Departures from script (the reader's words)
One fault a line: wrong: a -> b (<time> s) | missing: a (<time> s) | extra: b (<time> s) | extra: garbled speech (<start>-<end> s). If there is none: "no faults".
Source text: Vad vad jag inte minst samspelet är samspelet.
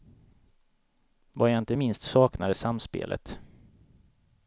missing: vad (1.5 s)
wrong: samspelet -> saknar (2.0 s)